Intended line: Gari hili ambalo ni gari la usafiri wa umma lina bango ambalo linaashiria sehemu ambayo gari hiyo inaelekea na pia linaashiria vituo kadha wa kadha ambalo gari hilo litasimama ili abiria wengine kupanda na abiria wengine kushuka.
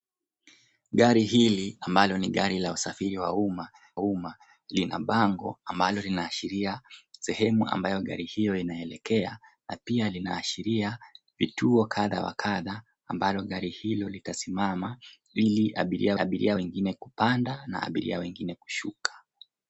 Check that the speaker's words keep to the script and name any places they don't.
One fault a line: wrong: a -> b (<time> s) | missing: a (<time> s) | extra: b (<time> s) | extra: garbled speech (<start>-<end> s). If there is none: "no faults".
extra: umma (4.0 s)
extra: abiria (16.2 s)